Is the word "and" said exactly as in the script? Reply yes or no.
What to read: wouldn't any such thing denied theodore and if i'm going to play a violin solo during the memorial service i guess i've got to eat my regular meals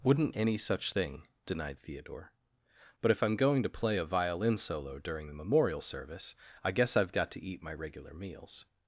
no